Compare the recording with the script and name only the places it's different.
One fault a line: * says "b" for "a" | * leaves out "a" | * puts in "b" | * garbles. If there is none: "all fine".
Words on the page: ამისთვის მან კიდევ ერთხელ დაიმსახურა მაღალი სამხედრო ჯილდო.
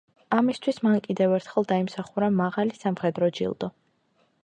all fine